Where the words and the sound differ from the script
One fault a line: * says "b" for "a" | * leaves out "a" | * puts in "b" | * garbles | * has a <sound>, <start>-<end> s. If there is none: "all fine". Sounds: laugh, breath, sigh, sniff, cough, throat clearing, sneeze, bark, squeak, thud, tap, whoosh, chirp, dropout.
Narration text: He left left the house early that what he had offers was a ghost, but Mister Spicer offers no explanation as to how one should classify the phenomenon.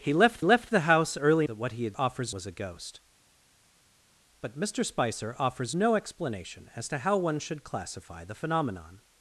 all fine